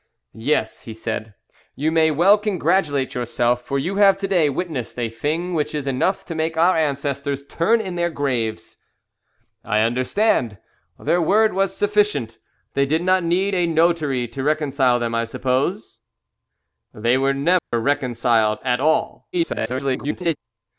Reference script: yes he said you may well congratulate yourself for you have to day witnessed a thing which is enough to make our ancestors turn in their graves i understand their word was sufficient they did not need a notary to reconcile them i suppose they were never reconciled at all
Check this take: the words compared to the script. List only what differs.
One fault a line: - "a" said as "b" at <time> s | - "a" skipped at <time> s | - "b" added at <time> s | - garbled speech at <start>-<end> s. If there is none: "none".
- garbled speech at 19.3-20.4 s